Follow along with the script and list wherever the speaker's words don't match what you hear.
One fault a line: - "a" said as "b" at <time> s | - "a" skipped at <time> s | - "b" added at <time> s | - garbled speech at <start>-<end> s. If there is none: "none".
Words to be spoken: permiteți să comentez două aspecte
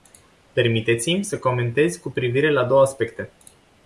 - "mi" added at 1.1 s
- "cu privire la" added at 2.0 s